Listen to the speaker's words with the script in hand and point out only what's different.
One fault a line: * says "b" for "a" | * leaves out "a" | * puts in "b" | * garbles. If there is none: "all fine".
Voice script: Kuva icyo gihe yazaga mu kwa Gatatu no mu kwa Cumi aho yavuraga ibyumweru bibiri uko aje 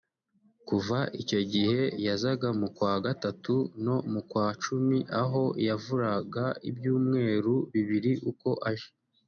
all fine